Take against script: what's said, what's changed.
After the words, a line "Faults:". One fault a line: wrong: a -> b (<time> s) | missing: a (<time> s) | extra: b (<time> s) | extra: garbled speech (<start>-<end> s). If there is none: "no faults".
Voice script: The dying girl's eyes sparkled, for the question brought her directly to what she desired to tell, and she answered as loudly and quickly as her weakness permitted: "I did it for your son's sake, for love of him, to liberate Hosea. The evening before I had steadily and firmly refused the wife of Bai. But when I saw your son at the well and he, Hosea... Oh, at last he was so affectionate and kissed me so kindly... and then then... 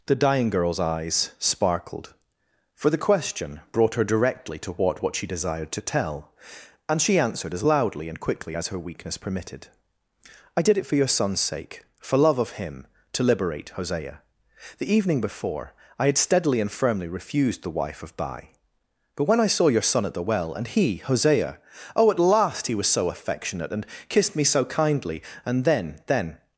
The dying girl's eyes sparkled, for the question brought her directly to what what she desired to tell, and she answered as loudly and quickly as her weakness permitted: "I did it for your son's sake, for love of him, to liberate Hosea. The evening before I had steadily and firmly refused the wife of Bai. But when I saw your son at the well and he, Hosea... Oh, at last he was so affectionate and kissed me so kindly... and then then...
Faults:
extra: what (5.0 s)